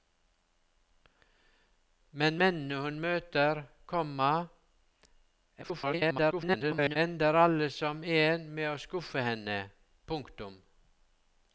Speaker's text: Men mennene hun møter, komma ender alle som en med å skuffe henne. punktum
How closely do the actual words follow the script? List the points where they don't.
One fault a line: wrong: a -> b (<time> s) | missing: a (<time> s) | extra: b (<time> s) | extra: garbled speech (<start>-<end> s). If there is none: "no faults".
extra: garbled speech (5.6-7.0 s)